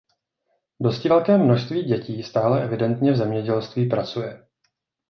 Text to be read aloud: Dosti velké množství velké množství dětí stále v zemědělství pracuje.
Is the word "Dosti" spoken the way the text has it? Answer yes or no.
yes